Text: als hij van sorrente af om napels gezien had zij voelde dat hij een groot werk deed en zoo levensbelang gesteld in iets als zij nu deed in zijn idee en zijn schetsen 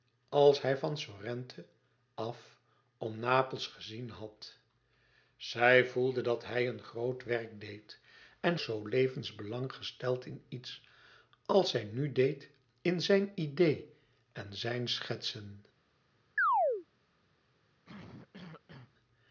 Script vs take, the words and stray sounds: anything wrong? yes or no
yes